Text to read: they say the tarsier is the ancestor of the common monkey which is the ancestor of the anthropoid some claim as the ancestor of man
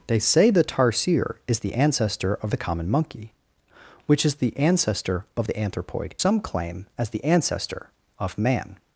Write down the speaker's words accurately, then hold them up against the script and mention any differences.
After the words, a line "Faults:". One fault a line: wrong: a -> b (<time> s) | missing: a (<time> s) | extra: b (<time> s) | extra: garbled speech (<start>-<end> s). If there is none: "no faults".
they say the tarsier is the ancestor of the common monkey which is the ancestor of the anthropoid some claim as the ancestor of man
Faults:
no faults